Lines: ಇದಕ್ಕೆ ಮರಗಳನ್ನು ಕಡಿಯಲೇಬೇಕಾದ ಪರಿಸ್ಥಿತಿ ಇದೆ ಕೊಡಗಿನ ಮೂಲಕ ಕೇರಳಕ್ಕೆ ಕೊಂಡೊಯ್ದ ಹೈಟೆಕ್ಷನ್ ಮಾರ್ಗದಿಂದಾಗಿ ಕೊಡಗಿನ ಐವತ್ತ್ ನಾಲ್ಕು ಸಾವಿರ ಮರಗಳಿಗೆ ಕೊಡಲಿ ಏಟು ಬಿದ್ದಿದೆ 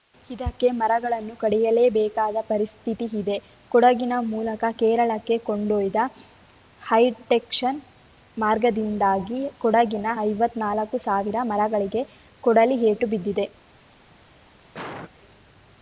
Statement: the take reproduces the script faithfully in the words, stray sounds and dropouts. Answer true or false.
false